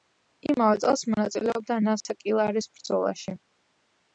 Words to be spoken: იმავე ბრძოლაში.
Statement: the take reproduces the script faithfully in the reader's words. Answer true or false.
false